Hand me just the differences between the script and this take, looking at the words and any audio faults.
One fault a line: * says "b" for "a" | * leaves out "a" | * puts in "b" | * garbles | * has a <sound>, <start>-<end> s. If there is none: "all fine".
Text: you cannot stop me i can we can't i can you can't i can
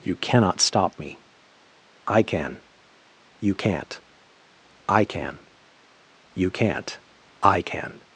* says "you" for "we"